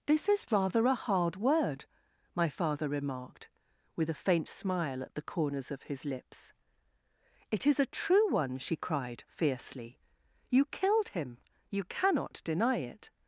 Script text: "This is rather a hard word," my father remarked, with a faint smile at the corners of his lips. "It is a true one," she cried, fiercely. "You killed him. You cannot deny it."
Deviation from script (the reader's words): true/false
false